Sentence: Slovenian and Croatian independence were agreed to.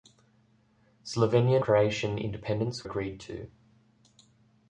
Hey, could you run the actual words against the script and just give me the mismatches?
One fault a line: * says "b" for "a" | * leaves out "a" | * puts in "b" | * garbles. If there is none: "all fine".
* leaves out "and"
* leaves out "were"